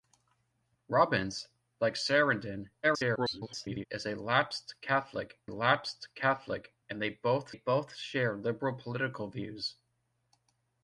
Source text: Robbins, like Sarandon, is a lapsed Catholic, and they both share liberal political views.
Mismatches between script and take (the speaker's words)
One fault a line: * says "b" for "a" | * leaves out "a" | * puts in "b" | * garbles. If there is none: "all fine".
* garbles
* puts in "lapsed Catholic"
* puts in "both"